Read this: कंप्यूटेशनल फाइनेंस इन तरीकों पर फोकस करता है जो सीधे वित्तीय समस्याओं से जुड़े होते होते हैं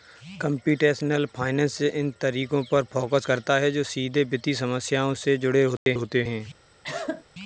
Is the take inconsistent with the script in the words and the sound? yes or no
yes